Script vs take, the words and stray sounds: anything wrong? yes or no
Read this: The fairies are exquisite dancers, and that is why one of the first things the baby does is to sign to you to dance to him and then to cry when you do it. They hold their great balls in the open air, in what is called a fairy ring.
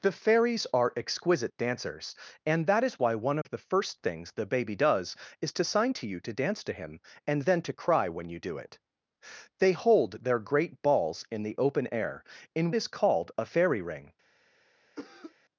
yes